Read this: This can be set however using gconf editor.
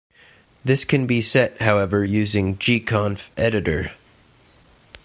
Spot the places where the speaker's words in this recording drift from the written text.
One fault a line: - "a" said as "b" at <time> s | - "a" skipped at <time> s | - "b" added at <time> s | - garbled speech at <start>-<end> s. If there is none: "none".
none